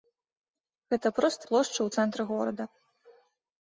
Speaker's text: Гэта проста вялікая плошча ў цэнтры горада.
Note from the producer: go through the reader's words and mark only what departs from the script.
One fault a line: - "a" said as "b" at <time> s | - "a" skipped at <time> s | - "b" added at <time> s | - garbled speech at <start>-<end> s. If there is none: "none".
- "вялікая" skipped at 1.4 s